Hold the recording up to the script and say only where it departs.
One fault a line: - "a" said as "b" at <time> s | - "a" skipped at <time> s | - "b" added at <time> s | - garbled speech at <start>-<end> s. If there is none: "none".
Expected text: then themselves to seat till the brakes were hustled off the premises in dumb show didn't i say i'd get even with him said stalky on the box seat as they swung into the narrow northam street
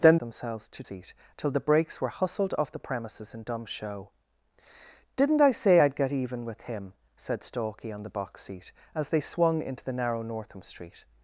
none